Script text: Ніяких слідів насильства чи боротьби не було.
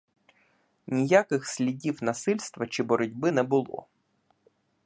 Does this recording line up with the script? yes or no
yes